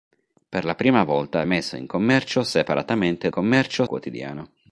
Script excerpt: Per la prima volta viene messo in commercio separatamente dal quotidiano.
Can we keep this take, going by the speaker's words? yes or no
no